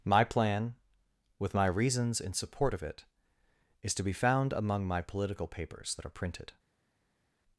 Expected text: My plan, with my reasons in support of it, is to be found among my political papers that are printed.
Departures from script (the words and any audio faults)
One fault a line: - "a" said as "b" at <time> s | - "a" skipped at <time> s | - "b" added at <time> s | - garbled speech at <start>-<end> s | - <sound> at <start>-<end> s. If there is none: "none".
none